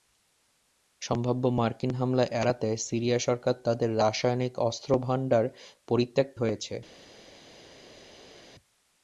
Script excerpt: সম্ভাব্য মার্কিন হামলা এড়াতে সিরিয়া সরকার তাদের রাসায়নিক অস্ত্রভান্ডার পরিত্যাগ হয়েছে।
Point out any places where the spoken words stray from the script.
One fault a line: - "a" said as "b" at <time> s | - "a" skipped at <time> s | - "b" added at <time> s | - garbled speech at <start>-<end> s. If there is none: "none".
none